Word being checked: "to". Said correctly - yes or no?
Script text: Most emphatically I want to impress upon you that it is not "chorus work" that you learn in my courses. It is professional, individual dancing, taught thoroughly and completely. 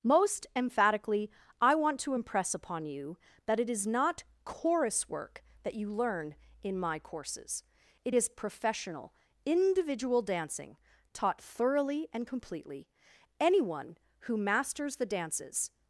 yes